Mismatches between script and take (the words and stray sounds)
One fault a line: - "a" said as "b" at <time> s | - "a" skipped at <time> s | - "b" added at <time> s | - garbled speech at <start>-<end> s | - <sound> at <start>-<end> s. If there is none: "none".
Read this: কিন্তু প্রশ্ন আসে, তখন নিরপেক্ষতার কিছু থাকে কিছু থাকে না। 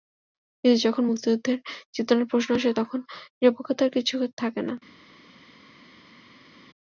- "যখন মুক্তিযুদ্ধের চেতনার" added at 0.8 s
- "কিছু থাকে" skipped at 4.6 s